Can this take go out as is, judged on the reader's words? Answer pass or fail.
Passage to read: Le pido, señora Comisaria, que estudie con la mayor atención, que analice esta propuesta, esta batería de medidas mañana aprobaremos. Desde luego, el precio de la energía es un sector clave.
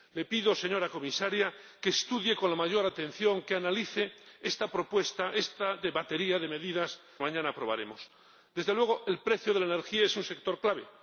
pass